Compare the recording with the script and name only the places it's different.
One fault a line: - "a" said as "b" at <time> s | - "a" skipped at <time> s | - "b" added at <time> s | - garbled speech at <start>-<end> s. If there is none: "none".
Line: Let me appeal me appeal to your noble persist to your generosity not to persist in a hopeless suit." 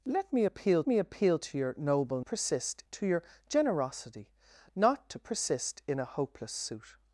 none